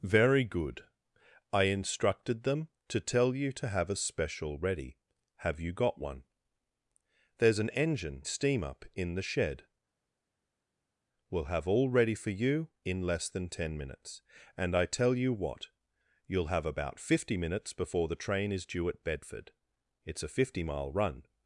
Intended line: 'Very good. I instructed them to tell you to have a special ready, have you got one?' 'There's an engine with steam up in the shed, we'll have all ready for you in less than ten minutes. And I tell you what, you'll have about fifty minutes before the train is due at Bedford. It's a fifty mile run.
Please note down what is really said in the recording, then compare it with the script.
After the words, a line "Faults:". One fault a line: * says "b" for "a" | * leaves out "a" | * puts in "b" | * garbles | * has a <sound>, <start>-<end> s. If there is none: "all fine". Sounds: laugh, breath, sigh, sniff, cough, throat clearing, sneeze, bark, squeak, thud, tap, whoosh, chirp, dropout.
'Very good. I instructed them to tell you to have a special ready, have you got one?' 'There's an engine steam up in the shed, we'll have all ready for you in less than ten minutes. And I tell you what, you'll have about fifty minutes before the train is due at Bedford. It's a fifty mile run.
Faults:
* leaves out "with"